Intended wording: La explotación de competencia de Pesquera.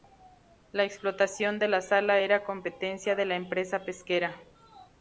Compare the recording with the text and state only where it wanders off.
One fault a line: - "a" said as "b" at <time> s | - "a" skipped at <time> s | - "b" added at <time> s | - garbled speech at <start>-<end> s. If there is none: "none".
- "la sala era" added at 1.7 s
- "la empresa" added at 3.2 s